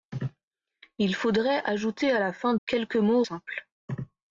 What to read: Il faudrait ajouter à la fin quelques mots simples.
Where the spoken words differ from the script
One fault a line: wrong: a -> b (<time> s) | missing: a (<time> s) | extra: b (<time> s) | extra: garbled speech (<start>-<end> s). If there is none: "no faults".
no faults